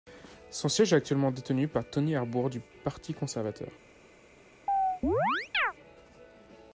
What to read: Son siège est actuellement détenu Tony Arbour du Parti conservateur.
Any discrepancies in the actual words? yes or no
yes